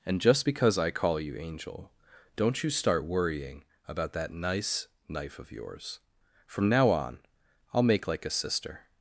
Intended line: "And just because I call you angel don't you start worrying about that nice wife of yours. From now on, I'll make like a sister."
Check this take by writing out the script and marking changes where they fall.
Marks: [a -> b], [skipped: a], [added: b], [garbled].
"And just because I call you angel don't you start worrying about that nice [wife -> knife] of yours. From now on, I'll make like a sister."